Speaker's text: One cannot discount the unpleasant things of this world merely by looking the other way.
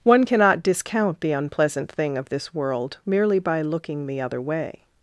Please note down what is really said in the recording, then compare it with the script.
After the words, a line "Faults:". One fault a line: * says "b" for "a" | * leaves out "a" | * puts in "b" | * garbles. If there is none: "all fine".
One cannot discount the unpleasant thing of this world merely by looking the other way.
Faults:
* says "thing" for "things"